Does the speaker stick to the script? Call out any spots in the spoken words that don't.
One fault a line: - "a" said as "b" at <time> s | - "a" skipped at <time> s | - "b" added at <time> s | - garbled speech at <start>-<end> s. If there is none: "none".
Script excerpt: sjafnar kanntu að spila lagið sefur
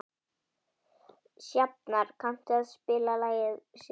none